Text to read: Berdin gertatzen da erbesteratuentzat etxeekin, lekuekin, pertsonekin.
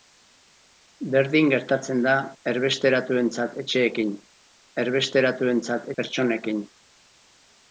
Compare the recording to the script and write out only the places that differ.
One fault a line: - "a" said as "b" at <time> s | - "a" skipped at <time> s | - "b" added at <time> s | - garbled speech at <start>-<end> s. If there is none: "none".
- "lekuekin" said as "erbesteratuentzat" at 4.8 s